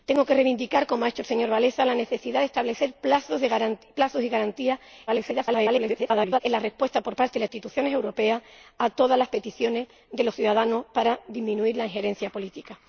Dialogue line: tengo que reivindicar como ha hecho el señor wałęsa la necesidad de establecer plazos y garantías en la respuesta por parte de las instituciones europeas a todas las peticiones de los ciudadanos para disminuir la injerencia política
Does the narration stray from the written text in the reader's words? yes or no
yes